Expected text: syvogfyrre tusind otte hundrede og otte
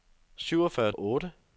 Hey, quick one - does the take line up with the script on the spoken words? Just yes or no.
no